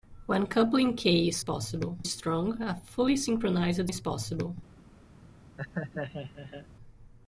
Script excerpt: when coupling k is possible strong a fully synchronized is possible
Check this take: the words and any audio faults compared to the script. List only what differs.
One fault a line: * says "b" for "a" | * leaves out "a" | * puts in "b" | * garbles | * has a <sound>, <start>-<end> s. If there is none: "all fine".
* has a laugh, 5.6-6.7 s